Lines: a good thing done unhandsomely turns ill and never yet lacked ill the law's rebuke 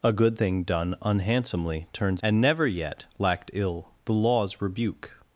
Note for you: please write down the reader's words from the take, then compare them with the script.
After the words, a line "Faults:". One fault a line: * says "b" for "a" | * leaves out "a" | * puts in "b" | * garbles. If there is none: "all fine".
a good thing done unhandsomely turns and never yet lacked ill the law's rebuke
Faults:
* leaves out "ill"